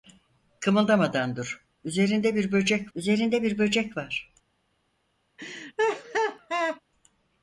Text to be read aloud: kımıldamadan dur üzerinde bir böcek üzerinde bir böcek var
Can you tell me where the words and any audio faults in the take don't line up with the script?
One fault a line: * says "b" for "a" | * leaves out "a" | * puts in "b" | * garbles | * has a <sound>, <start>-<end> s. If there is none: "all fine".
* has a laugh, 5.4-6.8 s